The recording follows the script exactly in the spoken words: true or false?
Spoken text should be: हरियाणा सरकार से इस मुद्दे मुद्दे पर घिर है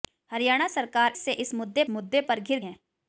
true